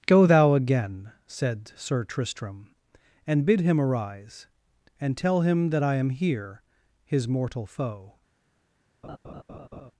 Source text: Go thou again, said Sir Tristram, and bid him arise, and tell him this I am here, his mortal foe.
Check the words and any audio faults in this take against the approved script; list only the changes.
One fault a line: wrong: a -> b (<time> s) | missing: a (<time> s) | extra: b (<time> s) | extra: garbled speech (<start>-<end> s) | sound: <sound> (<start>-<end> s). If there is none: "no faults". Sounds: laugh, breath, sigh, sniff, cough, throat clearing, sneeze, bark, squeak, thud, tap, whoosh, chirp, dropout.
wrong: this -> that (5.7 s)
sound: laugh (9.0-9.9 s)